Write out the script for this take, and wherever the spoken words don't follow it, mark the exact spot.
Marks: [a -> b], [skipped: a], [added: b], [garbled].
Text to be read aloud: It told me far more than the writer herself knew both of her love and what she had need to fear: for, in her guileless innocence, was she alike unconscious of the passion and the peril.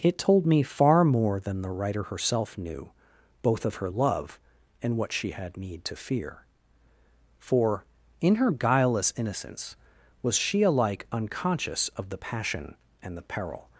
It told me far more than the writer herself knew both of her love and what she had need to fear: for, in her guileless innocence, was she alike unconscious of the passion and the peril.